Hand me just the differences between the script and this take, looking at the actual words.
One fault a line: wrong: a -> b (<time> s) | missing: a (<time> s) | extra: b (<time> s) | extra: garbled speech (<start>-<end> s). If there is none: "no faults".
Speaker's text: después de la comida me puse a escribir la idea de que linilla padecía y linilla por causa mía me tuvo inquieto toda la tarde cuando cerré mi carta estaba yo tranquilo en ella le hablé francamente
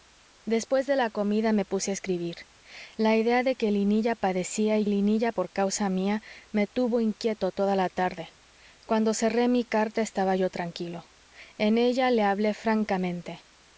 no faults